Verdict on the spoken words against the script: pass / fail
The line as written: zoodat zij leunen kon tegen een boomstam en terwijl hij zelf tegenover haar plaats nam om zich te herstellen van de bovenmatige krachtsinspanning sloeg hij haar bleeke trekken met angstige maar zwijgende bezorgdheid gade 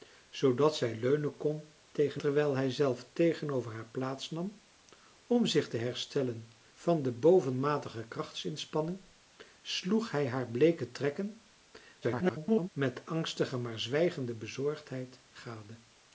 fail